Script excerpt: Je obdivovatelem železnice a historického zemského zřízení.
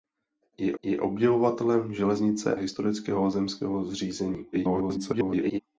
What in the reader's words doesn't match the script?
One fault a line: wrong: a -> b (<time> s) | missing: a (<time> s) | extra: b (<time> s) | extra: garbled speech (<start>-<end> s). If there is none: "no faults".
extra: je (0.8 s)
missing: a (2.6 s)
extra: garbled speech (4.5-5.6 s)